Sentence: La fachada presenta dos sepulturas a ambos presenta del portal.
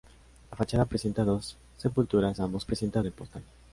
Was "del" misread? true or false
false